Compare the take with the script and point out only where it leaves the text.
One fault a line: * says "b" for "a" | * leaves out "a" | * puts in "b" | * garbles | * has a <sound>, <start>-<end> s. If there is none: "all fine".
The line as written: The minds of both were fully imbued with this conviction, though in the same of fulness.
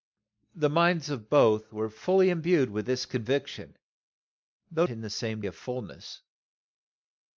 all fine